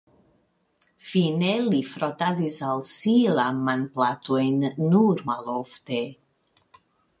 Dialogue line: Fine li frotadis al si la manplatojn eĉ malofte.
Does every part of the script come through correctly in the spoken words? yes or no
no